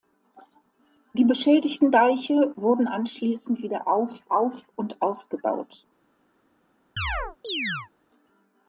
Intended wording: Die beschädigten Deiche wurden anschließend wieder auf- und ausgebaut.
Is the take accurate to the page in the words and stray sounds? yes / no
no